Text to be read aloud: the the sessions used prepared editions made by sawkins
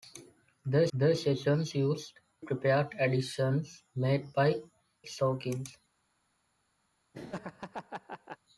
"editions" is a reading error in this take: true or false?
false